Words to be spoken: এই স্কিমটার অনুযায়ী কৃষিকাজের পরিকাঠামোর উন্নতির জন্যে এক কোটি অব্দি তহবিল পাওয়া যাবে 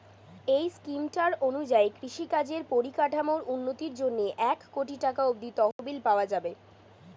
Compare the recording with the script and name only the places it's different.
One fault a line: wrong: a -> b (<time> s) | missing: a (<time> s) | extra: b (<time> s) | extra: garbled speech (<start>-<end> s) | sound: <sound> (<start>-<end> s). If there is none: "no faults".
extra: টাকা (5.0 s)
sound: dropout (5.7-5.8 s)